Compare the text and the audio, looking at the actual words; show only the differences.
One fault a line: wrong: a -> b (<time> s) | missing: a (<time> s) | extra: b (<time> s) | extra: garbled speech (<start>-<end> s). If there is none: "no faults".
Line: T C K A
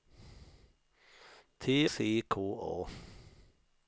no faults